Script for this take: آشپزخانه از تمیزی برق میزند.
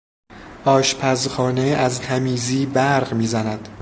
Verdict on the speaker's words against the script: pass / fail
pass